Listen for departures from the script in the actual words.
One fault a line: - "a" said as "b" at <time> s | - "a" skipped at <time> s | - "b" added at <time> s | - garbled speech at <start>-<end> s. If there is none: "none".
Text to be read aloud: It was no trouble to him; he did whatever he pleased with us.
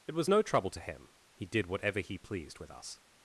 none